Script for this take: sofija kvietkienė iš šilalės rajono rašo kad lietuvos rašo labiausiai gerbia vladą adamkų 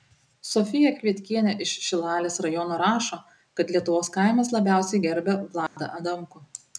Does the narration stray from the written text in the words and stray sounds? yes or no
yes